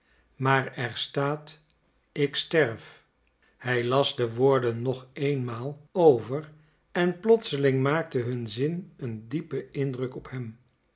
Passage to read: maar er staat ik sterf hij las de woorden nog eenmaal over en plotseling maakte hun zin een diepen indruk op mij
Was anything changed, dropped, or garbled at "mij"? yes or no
yes